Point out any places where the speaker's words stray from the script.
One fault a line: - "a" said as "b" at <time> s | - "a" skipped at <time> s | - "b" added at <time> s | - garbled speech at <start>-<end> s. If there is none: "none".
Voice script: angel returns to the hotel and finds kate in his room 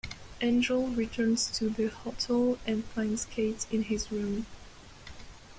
none